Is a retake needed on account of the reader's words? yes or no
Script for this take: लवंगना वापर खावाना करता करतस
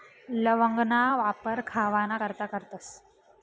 no